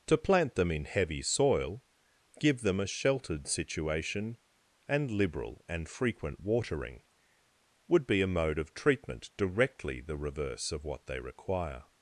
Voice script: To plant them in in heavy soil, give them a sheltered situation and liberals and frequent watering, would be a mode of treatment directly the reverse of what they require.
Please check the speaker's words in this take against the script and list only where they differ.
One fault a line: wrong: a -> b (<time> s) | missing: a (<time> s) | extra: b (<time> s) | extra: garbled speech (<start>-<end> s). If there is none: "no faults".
missing: in (0.8 s)
wrong: liberals -> liberal (5.1 s)